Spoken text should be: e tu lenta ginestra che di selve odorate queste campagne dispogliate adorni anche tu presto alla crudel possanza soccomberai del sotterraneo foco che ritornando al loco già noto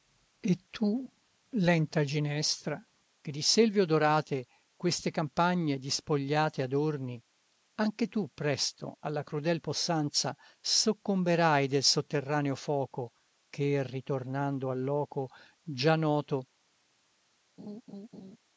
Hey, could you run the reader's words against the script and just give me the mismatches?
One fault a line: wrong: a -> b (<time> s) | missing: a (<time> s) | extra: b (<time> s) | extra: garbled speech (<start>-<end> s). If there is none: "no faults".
no faults